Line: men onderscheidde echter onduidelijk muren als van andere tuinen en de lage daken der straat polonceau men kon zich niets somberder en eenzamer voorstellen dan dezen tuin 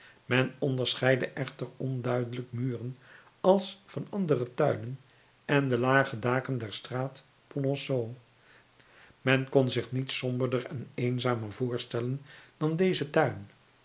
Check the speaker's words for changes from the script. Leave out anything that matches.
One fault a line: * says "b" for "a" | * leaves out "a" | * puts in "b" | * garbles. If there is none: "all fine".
all fine